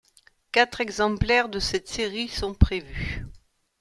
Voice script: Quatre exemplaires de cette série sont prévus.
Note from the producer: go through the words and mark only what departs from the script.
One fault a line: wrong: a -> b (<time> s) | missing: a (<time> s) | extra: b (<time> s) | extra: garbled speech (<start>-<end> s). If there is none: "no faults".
no faults